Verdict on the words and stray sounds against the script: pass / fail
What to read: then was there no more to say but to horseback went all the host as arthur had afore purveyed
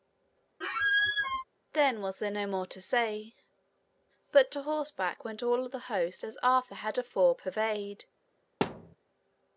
fail